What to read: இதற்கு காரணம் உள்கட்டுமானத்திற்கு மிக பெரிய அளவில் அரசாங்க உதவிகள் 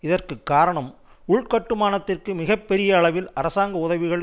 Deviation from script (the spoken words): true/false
false